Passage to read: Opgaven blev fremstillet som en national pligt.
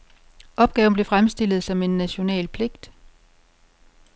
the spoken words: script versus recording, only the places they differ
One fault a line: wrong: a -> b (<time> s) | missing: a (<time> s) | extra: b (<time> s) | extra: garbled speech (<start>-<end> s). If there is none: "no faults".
no faults